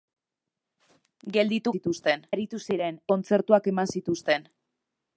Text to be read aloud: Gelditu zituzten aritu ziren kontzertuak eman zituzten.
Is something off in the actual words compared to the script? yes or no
no